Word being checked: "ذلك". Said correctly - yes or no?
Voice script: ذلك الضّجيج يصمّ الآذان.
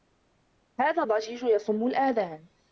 no